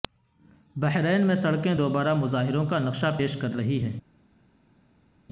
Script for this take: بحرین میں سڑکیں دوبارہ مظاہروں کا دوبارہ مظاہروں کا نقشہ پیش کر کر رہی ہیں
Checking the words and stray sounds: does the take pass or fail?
fail